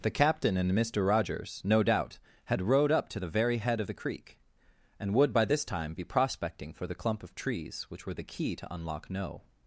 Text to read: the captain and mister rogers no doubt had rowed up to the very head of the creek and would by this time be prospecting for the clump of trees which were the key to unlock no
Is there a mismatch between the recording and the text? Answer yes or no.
no